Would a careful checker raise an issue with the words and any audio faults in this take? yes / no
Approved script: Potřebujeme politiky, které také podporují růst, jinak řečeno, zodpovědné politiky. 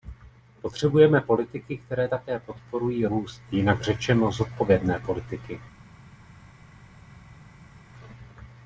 no